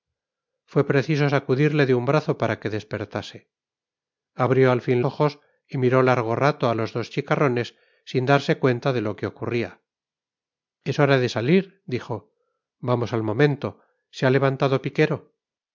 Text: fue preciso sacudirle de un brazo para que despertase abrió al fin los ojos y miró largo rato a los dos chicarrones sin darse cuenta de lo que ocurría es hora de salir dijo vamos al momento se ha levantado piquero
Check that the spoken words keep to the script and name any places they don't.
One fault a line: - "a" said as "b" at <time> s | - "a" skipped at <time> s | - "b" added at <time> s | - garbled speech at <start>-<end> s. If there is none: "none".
- "los" skipped at 5.0 s